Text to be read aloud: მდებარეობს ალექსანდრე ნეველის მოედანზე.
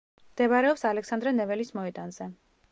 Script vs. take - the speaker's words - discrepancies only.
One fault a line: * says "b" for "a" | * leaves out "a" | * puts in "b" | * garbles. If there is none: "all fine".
all fine